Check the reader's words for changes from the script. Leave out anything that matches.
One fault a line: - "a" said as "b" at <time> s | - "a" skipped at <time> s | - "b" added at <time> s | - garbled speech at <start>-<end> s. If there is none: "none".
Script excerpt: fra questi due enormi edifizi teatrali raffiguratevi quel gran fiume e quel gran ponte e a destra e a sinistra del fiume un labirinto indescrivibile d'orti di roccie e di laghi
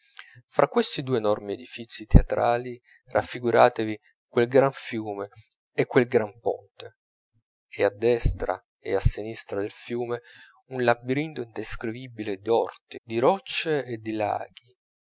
none